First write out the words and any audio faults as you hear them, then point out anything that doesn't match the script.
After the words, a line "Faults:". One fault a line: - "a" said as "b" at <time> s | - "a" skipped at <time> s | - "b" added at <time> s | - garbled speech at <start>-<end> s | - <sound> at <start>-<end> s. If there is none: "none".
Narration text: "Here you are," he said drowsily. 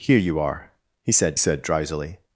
"Here you are," he said said drowsily.
Faults:
- "said" added at 1.4 s